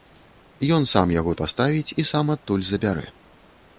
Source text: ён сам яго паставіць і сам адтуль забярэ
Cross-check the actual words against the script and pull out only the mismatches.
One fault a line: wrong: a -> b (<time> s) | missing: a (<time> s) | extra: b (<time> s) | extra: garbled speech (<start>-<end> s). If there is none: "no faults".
no faults